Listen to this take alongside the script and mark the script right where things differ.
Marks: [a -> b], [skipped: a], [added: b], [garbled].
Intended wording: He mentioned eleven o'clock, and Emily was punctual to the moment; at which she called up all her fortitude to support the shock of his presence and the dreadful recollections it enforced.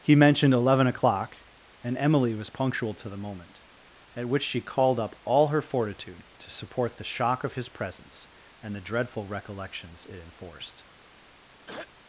He mentioned eleven o'clock, and Emily was punctual to the moment; at which she called up all her fortitude to support the shock of his presence and the dreadful recollections it enforced.